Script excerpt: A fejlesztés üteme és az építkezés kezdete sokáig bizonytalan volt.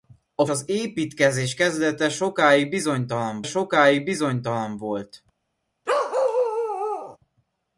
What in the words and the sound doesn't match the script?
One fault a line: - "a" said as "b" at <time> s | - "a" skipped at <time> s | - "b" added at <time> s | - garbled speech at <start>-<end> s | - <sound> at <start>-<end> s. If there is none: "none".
- "fejlesztés üteme és" skipped at 0.5 s
- "sokáig bizonytalan" added at 3.4 s
- bark at 5.9-7.2 s